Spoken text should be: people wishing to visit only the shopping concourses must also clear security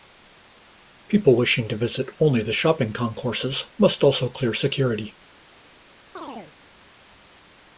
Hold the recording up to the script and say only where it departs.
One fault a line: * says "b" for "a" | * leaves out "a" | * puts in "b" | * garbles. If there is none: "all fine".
all fine